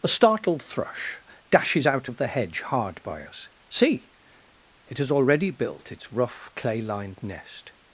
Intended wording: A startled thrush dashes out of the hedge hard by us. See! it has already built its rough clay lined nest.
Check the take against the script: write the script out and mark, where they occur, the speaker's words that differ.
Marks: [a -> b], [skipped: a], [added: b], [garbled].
A startled thrush dashes out of the hedge hard by us. See! it has already built its rough clay lined nest.